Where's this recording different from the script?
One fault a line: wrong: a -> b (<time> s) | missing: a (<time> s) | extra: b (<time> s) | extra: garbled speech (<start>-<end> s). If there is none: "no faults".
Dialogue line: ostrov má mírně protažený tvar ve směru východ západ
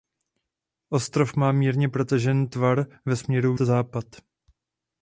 missing: východ (3.5 s)